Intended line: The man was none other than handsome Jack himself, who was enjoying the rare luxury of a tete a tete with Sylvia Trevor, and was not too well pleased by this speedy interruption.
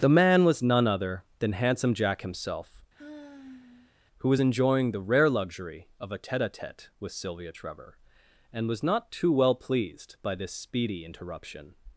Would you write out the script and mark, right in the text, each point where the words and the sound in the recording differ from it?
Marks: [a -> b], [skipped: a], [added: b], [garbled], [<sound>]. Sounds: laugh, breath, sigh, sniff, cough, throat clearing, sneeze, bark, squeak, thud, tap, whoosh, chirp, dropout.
The man was none other than handsome Jack himself, [sigh] who was enjoying the rare luxury of a tete a tete with Sylvia Trevor, and was not too well pleased by this speedy interruption.